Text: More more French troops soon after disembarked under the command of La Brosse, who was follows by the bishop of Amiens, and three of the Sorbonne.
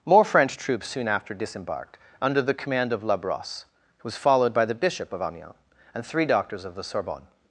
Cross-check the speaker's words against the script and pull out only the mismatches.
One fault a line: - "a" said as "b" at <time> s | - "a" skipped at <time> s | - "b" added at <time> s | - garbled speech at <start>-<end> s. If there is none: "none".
- "more" skipped at 0.2 s
- "follows" said as "followed" at 4.2 s
- "doctors" added at 6.2 s